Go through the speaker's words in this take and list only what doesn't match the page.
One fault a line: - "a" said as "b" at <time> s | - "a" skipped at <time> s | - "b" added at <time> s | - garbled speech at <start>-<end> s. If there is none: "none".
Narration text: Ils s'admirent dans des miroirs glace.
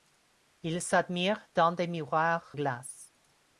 none